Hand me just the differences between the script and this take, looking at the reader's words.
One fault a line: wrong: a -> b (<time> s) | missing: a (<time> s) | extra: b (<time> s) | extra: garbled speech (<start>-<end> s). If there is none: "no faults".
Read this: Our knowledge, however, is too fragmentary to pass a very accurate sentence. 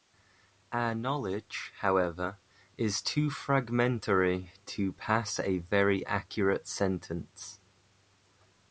no faults